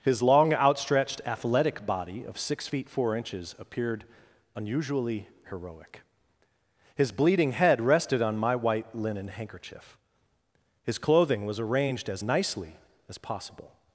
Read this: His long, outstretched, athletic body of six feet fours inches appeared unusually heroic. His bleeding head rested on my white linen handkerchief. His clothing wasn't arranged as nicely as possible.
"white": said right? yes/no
yes